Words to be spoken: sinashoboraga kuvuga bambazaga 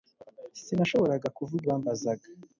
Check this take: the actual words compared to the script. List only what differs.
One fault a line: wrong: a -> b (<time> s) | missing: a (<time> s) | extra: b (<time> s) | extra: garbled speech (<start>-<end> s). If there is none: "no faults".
no faults